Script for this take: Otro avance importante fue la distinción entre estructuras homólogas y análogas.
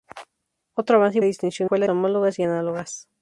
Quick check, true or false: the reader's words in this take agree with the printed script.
false